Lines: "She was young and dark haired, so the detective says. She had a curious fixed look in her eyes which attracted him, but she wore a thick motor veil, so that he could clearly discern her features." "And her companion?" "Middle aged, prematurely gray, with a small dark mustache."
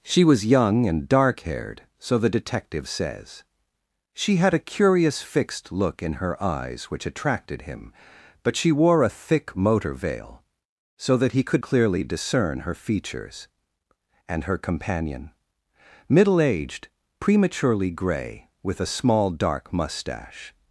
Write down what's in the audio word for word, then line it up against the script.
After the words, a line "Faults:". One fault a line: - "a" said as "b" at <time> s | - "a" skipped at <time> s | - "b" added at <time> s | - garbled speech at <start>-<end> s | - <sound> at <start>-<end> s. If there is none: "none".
"She was young and dark haired, so the detective says. She had a curious fixed look in her eyes which attracted him, but she wore a thick motor veil, so that he could clearly discern her features." "And her companion?" "Middle aged, prematurely gray, with a small dark mustache."
Faults:
none